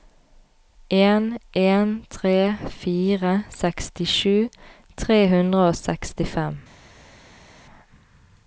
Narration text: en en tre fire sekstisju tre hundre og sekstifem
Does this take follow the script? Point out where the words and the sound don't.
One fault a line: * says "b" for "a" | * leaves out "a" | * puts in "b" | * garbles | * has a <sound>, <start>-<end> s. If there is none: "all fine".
all fine